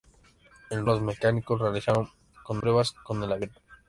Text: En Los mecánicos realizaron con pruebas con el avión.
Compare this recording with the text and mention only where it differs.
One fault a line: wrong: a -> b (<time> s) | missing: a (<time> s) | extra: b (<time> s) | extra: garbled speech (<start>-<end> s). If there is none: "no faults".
no faults